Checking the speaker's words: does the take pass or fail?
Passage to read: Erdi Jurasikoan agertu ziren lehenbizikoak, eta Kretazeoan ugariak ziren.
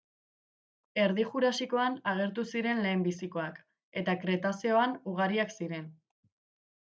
pass